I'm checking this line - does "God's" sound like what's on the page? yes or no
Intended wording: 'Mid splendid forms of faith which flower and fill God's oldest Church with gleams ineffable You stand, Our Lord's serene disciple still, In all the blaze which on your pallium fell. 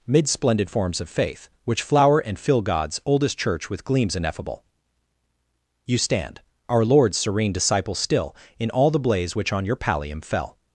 yes